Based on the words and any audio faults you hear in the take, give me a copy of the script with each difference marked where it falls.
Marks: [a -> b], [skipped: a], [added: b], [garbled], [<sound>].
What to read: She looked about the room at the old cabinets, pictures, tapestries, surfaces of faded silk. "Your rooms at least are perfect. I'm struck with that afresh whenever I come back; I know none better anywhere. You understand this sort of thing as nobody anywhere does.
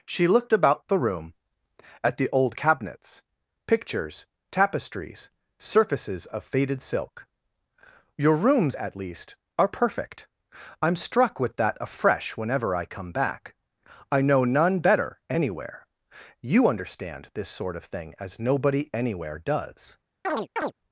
She looked about the room at the old cabinets, pictures, tapestries, surfaces of faded silk. "Your rooms at least are perfect. I'm struck with that afresh whenever I come back; I know none better anywhere. You understand this sort of thing as nobody anywhere does. [chirp]